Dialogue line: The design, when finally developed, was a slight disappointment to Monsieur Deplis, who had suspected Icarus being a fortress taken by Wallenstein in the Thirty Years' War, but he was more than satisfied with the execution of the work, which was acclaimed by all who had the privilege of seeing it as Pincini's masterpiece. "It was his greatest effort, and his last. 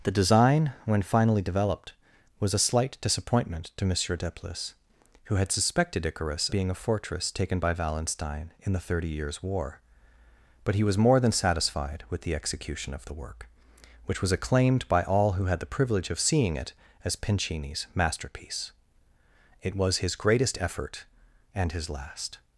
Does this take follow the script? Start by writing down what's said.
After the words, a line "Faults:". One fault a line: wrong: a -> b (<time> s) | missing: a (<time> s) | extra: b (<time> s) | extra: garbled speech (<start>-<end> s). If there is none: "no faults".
The design, when finally developed, was a slight disappointment to Monsieur Deplis, who had suspected Icarus being a fortress taken by Wallenstein in the Thirty Years' War, but he was more than satisfied with the execution of the work, which was acclaimed by all who had the privilege of seeing it as Pincini's masterpiece. "It was his greatest effort, and his last.
Faults:
no faults